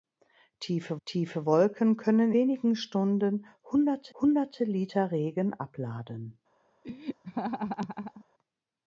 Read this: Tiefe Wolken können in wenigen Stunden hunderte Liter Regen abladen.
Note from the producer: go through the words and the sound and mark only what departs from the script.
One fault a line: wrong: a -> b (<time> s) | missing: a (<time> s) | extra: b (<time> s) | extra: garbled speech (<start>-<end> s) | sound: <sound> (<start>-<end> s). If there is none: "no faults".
extra: tiefe (1.0 s)
missing: in (2.3 s)
extra: hunderte (4.2 s)
sound: laugh (6.8-8.2 s)